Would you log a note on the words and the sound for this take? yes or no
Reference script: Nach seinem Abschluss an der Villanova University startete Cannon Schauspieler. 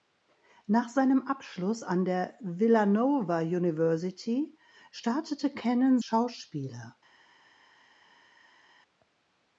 no